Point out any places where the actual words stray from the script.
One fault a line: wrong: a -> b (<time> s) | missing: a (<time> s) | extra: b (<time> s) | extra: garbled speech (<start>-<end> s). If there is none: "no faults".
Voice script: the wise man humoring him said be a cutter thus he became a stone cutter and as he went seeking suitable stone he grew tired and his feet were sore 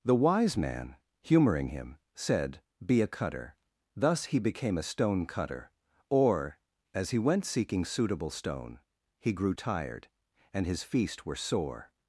wrong: and -> or (6.1 s)
wrong: feet -> feast (10.8 s)